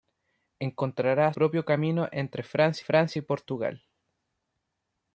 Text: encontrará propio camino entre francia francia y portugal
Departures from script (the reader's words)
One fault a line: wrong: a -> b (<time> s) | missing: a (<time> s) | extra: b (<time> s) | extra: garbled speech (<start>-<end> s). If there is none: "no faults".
no faults